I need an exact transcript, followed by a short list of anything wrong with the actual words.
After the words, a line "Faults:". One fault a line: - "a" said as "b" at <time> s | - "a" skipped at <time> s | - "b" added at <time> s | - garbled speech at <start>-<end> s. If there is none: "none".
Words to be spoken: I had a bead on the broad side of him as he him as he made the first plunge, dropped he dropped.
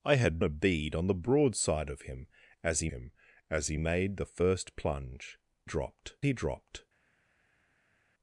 I had a bead on the broad side of him as he him as he made the first plunge, dropped he dropped.
Faults:
none